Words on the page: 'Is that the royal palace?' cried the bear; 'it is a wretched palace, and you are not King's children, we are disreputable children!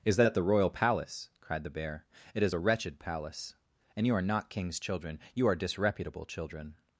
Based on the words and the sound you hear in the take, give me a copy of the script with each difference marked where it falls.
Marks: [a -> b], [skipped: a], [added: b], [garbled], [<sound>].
'Is that the royal palace?' cried the bear; 'it is a wretched palace, and you are not King's children, [we -> you] are disreputable children!